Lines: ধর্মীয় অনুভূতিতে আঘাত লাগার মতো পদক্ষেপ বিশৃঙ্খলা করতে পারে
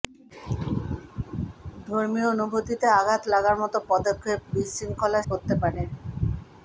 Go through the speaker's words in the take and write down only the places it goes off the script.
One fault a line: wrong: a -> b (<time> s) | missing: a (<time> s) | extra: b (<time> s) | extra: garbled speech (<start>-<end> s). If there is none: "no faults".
no faults